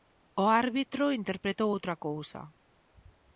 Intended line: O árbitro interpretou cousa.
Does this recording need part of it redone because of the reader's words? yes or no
yes